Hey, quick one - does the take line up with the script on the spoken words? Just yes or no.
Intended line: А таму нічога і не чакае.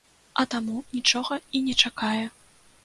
yes